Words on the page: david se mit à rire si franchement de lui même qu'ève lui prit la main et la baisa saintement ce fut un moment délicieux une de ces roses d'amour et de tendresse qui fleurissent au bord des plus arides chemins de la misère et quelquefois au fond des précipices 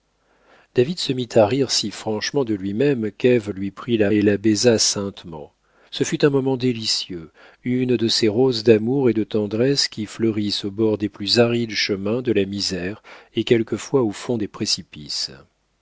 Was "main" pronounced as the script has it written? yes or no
no